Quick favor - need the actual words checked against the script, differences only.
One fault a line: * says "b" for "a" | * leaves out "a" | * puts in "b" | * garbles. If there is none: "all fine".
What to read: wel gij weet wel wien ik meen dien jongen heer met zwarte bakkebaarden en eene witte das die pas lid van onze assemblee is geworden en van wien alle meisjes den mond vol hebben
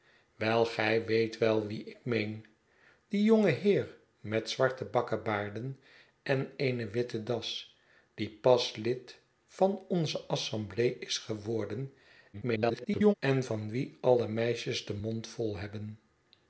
* garbles